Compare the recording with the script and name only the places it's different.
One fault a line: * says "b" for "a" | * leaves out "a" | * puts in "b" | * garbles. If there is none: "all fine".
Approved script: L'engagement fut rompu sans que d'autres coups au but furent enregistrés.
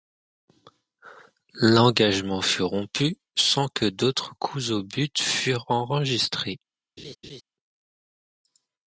all fine